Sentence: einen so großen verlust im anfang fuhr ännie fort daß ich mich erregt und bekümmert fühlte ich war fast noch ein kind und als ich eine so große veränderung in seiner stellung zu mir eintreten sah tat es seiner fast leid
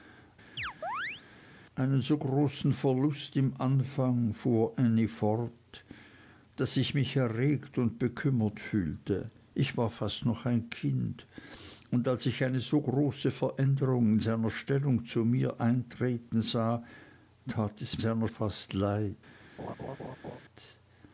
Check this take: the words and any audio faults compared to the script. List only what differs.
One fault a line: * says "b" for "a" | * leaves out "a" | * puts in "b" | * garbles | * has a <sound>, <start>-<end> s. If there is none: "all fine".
* has a chirp, 0.6-1.2 s
* has a laugh, 19.6-20.4 s